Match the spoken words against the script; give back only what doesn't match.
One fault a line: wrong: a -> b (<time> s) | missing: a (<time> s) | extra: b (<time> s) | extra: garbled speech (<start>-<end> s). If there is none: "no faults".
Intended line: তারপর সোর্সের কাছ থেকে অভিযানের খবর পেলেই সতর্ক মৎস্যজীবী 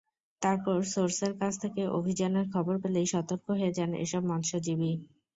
extra: হয়ে যান এসব (3.5 s)